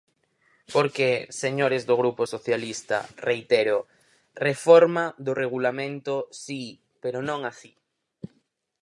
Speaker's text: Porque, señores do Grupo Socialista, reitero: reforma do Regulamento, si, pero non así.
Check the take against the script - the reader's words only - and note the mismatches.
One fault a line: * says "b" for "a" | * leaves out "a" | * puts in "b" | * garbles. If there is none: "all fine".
all fine